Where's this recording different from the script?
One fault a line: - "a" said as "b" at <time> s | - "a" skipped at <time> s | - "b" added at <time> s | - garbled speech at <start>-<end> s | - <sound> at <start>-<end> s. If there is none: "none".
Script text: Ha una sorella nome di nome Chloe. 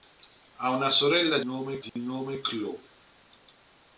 - dropout at 1.9-2.0 s